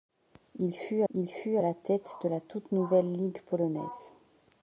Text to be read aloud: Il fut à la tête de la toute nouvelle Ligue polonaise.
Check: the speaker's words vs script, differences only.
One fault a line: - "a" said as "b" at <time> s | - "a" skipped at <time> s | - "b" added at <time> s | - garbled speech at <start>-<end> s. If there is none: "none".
- "il fut" added at 1.1 s